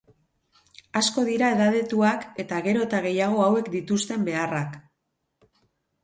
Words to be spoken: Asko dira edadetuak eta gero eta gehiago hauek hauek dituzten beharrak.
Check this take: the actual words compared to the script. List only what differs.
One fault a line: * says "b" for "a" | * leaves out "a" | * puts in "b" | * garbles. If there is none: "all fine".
* leaves out "hauek"